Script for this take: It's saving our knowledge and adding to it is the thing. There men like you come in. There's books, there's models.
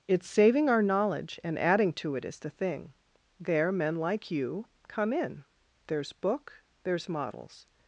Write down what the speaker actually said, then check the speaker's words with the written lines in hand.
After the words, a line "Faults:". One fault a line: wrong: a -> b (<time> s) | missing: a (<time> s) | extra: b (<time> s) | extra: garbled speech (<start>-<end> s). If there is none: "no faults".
It's saving our knowledge and adding to it is the thing. There men like you come in. There's book, there's models.
Faults:
wrong: books -> book (6.1 s)